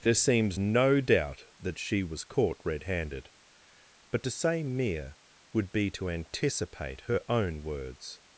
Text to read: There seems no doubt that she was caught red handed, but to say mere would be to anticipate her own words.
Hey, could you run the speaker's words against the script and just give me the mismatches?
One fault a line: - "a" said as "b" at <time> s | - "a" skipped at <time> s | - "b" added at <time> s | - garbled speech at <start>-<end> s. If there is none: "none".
none